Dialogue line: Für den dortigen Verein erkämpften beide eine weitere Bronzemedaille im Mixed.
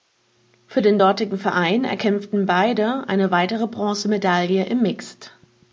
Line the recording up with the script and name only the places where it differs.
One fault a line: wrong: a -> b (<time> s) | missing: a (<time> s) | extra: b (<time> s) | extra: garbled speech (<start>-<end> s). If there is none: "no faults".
no faults